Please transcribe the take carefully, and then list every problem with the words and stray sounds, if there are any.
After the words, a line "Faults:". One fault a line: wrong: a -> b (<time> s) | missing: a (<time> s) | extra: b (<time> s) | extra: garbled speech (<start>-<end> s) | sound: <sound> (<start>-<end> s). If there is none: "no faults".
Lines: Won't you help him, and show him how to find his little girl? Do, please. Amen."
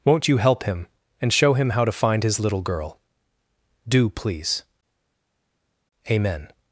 Won't you help him, and show him how to find his little girl? Do, please. Amen."
Faults:
no faults